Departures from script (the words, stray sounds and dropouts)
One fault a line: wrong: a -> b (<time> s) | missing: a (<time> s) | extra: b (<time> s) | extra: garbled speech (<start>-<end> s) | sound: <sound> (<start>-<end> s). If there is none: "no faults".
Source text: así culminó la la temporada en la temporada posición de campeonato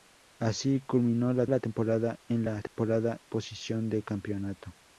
sound: dropout (2.7-2.8 s)